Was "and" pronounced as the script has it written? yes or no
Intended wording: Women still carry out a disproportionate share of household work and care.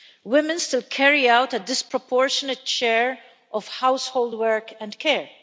yes